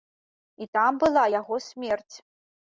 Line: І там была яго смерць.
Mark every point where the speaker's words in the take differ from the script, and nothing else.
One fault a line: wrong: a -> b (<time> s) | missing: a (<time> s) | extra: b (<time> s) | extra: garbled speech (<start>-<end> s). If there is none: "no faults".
no faults